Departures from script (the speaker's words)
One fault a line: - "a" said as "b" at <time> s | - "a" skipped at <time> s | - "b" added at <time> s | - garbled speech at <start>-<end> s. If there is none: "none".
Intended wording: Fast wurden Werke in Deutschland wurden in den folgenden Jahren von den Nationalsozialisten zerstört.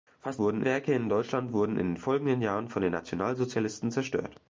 none